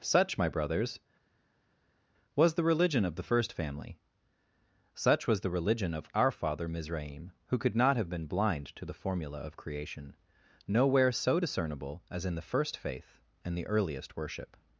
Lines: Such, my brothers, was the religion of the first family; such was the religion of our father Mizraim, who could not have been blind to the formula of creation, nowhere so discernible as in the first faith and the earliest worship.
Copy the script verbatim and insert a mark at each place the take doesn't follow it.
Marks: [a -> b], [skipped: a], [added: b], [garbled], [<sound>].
Such, my brothers, was the religion of the first family; such was the religion of our father Mizraim, who could not have been blind to the formula of creation, nowhere so discernible as in the first faith and the earliest worship.